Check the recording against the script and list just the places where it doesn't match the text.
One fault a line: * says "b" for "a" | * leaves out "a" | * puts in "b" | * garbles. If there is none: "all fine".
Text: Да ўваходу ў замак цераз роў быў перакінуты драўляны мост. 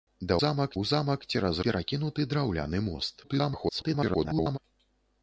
* says "замак" for "ўваходу"
* leaves out "роў быў"
* garbles